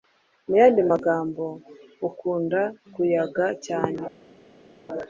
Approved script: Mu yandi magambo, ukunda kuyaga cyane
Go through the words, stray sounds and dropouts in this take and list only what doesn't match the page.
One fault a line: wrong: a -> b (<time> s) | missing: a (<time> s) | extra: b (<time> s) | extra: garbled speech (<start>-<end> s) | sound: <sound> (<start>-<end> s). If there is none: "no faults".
no faults